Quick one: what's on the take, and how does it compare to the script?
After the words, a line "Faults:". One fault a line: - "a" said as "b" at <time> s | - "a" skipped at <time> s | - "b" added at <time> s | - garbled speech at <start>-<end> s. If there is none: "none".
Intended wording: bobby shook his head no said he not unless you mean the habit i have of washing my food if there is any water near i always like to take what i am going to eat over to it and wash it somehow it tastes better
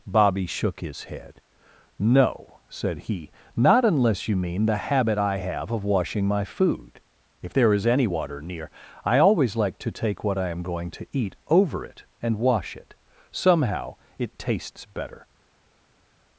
bobby shook his head no said he not unless you mean the habit i have of washing my food if there is any water near i always like to take what i am going to eat over it and wash it somehow it tastes better
Faults:
- "to" skipped at 11.8 s